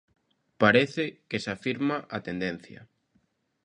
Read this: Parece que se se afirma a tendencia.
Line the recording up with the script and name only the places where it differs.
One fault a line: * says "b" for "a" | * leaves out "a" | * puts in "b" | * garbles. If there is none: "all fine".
* leaves out "se"